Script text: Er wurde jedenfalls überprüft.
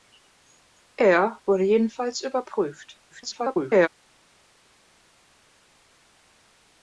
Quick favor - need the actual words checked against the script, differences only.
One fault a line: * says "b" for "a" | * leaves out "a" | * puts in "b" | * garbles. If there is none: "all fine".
* garbles